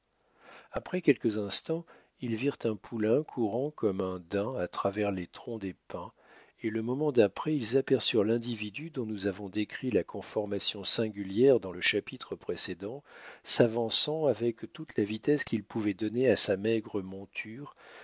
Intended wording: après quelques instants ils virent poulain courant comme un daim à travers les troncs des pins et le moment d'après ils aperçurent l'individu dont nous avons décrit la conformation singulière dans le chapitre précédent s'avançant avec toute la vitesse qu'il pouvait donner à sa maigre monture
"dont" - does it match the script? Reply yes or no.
yes